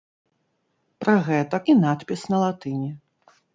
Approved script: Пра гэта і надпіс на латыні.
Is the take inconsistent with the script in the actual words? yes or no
no